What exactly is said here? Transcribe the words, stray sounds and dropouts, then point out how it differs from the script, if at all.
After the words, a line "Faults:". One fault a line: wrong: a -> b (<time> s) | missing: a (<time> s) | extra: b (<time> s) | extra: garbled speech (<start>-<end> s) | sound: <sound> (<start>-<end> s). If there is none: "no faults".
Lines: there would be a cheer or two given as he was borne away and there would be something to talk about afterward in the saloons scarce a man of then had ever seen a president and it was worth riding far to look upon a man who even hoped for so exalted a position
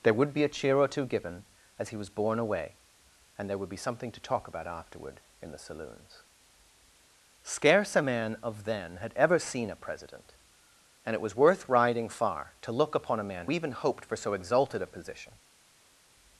there would be a cheer or two given as he was borne away and there would be something to talk about afterward in the saloons scarce a man of then had ever seen a president and it was worth riding far to look upon a man even hoped for so exalted a position
Faults:
missing: who (13.5 s)